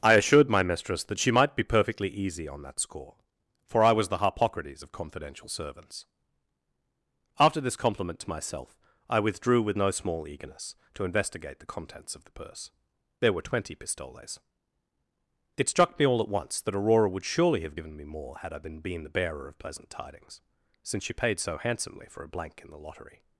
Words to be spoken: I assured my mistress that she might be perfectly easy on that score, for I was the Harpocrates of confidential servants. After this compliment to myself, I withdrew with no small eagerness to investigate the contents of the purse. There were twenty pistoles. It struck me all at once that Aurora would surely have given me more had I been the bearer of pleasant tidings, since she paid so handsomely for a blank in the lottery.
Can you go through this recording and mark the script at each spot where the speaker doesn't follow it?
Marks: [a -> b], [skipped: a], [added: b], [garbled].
I assured my mistress that she might be perfectly easy on that score, for I was the Harpocrates of confidential servants. After this compliment to myself, I withdrew with no small eagerness to investigate the contents of the purse. There were twenty pistoles. It struck me all at once that Aurora would surely have given me more had I been [added: been] the bearer of pleasant tidings, since she paid so handsomely for a blank in the lottery.